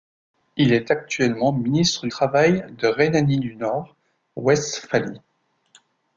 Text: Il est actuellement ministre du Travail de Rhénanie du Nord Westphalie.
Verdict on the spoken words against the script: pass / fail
fail